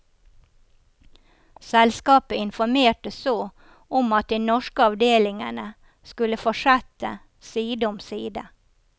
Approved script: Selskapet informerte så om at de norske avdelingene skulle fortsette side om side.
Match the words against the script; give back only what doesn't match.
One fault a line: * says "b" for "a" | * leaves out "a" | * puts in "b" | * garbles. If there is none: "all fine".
all fine